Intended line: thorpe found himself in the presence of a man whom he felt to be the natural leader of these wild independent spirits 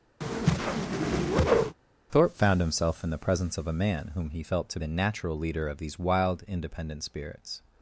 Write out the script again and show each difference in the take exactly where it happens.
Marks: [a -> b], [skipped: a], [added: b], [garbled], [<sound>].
[whoosh] thorpe found himself in the presence of a man whom he felt to [skipped: be] the natural leader of these wild independent spirits